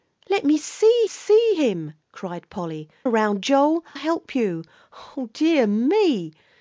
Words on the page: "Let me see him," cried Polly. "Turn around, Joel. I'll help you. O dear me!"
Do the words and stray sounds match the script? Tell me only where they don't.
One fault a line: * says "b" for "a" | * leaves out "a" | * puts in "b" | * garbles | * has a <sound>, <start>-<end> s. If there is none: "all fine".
* puts in "see"
* leaves out "Turn"
* leaves out "I'll"